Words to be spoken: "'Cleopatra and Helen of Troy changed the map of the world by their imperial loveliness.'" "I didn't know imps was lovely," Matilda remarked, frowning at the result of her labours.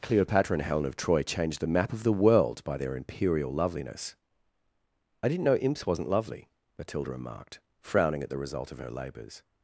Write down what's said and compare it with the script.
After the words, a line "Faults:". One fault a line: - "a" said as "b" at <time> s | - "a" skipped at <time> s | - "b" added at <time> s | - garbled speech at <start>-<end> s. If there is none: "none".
"'Cleopatra and Helen of Troy changed the map of the world by their imperial loveliness.'" "I didn't know imps wasn't lovely," Matilda remarked, frowning at the result of her labours.
Faults:
- "was" said as "wasn't" at 5.8 s